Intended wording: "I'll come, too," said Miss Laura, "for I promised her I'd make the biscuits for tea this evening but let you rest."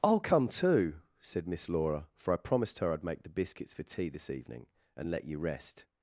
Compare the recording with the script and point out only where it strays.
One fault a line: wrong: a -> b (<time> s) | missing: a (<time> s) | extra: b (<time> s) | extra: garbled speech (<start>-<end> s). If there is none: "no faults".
wrong: but -> and (4.9 s)